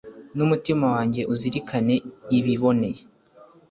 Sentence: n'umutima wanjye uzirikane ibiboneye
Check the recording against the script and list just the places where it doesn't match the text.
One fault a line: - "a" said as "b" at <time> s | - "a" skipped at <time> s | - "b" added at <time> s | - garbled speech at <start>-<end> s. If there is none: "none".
none